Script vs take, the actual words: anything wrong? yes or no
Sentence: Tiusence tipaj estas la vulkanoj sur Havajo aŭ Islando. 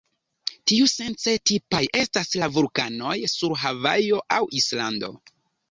no